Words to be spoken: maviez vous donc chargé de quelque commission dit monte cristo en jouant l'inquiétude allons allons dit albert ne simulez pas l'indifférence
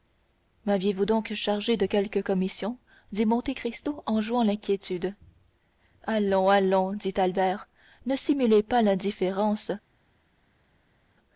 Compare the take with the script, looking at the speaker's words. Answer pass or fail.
pass